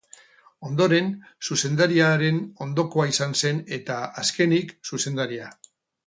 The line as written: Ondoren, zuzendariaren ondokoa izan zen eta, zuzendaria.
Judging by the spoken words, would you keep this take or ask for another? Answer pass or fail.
fail